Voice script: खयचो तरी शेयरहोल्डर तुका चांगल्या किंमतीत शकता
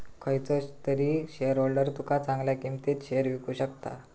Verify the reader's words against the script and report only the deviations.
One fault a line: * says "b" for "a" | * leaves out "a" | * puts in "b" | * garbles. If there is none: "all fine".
* puts in "शेयर विकु"